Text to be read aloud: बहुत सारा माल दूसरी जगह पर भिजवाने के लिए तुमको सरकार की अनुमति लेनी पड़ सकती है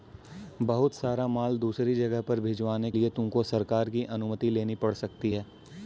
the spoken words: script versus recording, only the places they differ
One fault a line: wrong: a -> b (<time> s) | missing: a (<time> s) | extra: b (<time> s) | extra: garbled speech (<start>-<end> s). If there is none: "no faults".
missing: के (2.9 s)